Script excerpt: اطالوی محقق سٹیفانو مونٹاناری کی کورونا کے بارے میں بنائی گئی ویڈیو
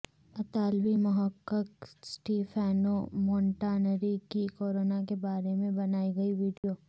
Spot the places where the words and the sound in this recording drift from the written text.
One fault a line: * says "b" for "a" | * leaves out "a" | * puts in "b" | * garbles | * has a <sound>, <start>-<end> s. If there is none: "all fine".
* has a dropout, 6.6-6.6 s